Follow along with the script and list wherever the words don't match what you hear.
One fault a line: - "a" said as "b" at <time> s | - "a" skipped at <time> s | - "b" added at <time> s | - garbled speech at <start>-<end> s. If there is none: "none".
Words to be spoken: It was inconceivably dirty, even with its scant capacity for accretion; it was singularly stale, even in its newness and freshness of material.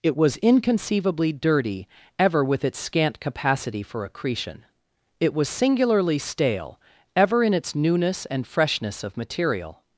- "even" said as "ever" at 2.2 s
- "even" said as "ever" at 7.2 s